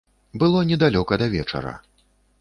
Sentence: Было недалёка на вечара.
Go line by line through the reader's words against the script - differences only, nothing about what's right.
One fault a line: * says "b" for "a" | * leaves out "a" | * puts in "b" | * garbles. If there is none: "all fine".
* says "да" for "на"